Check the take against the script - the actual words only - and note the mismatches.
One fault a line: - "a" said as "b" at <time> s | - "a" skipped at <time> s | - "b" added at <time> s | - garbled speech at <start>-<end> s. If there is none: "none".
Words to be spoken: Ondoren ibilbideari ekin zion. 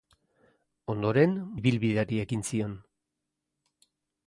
none